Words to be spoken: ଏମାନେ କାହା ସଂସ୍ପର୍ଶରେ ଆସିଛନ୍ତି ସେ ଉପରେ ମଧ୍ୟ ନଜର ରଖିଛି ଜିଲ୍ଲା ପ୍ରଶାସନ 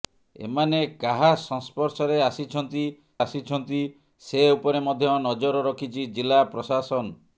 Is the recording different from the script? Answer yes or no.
yes